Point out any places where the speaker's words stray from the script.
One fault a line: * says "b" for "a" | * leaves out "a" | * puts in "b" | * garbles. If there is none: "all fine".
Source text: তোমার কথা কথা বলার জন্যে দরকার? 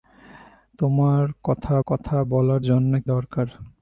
all fine